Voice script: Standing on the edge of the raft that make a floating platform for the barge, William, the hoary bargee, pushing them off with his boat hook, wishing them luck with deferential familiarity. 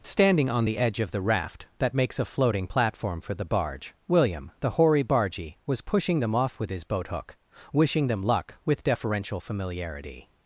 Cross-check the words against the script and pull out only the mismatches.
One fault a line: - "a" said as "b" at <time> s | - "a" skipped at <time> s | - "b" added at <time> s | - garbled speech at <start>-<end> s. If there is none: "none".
- "make" said as "makes" at 1.9 s
- "was" added at 5.6 s